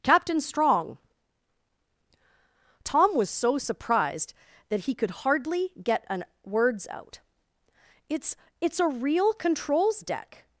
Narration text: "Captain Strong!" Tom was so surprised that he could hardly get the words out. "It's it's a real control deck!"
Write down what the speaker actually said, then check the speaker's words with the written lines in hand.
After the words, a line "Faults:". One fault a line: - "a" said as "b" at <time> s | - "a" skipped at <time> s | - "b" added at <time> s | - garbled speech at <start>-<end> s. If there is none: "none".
"Captain Strong!" Tom was so surprised that he could hardly get an words out. "It's it's a real controls deck!"
Faults:
- "the" said as "an" at 6.1 s
- "control" said as "controls" at 9.3 s